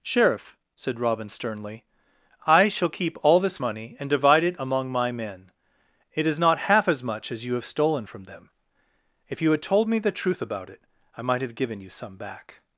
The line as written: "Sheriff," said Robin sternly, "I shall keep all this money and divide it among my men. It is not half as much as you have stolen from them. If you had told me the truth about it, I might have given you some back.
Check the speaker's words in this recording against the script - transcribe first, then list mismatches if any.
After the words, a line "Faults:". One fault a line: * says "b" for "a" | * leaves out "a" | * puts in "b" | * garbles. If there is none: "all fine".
"Sheriff," said Robin sternly, "I shall keep all this money and divide it among my men. It is not half as much as you have stolen from them. If you had told me the truth about it, I might have given you some back.
Faults:
all fine